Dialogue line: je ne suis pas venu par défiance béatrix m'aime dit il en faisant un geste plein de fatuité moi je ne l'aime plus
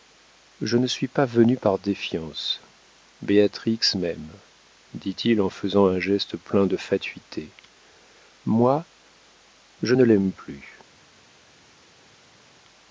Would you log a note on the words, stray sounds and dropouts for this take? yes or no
no